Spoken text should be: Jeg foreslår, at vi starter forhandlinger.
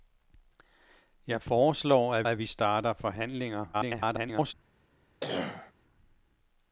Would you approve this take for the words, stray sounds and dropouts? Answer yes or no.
no